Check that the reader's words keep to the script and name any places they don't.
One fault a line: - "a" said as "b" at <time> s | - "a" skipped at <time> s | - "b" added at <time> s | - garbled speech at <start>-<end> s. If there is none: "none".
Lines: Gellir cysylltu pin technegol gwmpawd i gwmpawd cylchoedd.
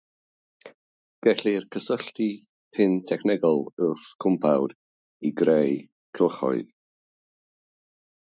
- "wrth" added at 3.9 s
- "gwmpawd" said as "greu" at 5.4 s